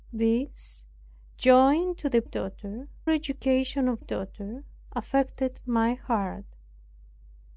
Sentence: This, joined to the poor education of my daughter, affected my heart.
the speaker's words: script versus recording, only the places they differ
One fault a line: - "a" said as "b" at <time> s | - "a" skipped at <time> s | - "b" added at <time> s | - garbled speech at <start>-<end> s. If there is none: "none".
- "poor" said as "daughter" at 2.2 s
- "my" skipped at 4.0 s